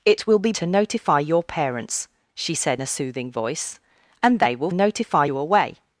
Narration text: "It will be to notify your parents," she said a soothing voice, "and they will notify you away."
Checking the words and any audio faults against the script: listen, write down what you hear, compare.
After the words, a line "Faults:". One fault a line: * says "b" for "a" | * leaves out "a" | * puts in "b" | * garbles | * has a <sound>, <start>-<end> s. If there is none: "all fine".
"It will be to notify your parents," she said a soothing voice, "and they will notify you away."
Faults:
all fine